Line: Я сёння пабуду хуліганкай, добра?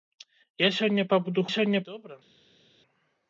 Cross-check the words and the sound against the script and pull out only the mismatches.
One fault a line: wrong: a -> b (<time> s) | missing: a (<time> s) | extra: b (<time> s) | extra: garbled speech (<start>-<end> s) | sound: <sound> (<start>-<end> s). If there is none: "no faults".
wrong: хуліганкай -> сёння (1.6 s)